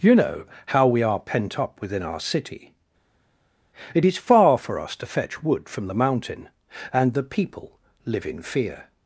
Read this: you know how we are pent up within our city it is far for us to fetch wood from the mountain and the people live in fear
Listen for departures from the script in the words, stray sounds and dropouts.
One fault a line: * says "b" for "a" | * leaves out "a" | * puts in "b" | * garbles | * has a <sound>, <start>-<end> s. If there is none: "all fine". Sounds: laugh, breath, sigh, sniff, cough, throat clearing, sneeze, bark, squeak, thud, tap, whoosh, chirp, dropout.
all fine